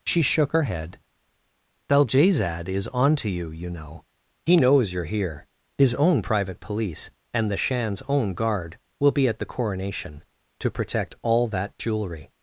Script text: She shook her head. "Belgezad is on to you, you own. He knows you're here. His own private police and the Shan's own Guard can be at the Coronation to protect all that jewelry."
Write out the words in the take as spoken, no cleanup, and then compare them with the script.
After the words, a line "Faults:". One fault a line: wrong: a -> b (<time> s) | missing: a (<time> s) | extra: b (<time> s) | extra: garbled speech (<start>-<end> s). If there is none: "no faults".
She shook her head. "Belgezad is on to you, you know. He knows you're here. His own private police and the Shan's own Guard will be at the Coronation to protect all that jewelry."
Faults:
wrong: own -> know (3.7 s)
wrong: can -> will (9.0 s)